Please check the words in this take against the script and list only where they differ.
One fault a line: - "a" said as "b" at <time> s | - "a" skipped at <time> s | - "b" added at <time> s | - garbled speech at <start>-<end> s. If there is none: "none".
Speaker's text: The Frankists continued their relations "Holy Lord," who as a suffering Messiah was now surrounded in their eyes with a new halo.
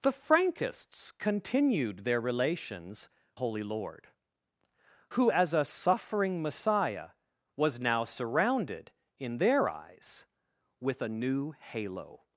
none